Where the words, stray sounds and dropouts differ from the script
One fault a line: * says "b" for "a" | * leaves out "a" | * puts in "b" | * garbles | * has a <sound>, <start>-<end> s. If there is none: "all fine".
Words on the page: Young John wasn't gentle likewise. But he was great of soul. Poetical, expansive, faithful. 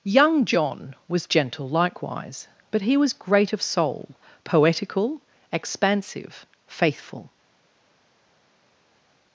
* says "was" for "wasn't"